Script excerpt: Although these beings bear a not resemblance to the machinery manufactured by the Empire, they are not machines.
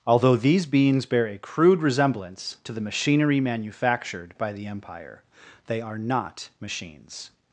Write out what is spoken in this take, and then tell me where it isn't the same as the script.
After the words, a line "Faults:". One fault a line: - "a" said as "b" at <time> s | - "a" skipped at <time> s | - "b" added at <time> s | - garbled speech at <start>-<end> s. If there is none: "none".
Although these beings bear a crude resemblance to the machinery manufactured by the Empire, they are not machines.
Faults:
- "not" said as "crude" at 1.4 s